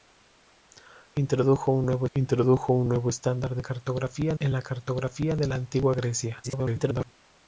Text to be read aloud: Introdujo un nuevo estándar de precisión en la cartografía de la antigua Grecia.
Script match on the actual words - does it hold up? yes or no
no